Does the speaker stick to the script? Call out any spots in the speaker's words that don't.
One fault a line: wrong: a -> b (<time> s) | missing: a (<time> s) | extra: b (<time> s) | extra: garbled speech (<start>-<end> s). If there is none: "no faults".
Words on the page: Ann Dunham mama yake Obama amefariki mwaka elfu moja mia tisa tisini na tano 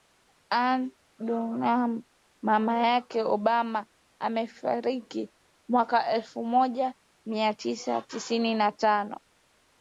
no faults